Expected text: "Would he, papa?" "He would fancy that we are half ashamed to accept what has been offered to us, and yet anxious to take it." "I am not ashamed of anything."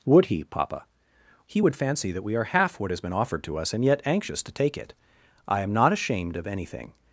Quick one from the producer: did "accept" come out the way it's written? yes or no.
no